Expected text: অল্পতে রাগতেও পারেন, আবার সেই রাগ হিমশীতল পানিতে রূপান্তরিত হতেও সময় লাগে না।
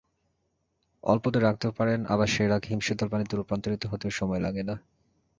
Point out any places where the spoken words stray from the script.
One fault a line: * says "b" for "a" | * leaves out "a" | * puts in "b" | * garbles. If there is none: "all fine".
all fine